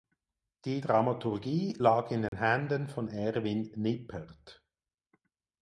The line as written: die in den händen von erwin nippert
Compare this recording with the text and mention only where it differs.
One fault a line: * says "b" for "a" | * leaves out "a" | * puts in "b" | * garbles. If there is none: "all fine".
* puts in "dramaturgie lag"